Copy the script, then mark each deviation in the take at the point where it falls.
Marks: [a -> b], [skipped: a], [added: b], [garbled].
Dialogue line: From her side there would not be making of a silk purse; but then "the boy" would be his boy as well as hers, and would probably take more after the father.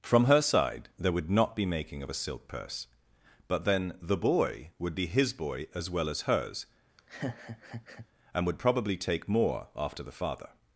From her side there would not be making of a silk purse; but then "the boy" would be his boy as well as hers, and would probably take more after the father.